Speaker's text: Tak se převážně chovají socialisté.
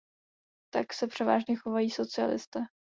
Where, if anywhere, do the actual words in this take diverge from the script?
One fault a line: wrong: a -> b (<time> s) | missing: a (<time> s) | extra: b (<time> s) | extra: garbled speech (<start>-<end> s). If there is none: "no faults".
no faults